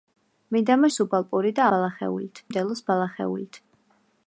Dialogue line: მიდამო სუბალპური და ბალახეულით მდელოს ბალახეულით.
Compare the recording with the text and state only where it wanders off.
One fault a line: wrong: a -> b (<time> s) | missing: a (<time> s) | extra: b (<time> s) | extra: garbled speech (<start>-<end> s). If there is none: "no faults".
no faults